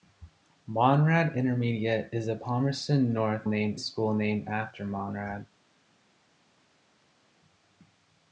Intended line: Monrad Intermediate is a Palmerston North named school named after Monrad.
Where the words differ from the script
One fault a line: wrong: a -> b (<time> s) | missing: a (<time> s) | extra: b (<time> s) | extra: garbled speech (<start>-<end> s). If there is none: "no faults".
no faults